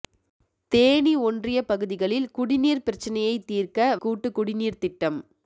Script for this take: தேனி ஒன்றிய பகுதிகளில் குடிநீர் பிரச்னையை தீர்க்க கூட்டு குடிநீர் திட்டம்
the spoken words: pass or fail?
pass